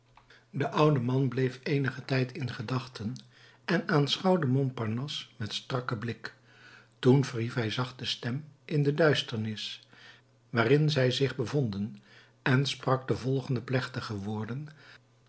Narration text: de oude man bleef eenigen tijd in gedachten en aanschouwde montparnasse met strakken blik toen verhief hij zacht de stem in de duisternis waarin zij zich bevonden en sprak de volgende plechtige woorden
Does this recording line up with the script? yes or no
yes